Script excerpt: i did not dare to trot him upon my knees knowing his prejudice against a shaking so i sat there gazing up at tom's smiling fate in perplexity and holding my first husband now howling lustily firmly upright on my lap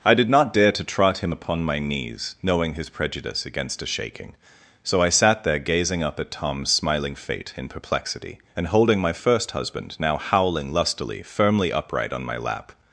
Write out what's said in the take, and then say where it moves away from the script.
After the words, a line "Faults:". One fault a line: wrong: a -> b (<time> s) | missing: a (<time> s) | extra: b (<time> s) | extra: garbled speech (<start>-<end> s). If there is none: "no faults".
i did not dare to trot him upon my knees knowing his prejudice against a shaking so i sat there gazing up at tom's smiling fate in perplexity and holding my first husband now howling lustily firmly upright on my lap
Faults:
no faults